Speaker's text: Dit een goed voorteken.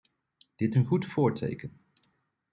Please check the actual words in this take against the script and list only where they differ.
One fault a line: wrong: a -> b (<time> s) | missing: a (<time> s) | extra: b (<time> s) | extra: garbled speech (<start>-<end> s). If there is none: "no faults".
no faults